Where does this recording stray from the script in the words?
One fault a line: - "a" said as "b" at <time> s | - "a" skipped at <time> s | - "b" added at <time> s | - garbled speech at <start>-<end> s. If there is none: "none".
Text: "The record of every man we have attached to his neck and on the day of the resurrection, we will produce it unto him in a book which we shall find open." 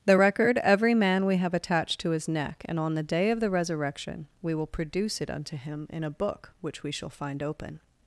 - "of" skipped at 0.6 s